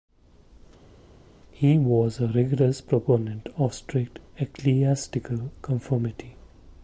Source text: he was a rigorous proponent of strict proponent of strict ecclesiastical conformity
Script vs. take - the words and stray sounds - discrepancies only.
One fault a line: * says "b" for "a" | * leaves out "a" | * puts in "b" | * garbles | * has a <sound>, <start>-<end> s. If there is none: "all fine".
* leaves out "proponent of strict"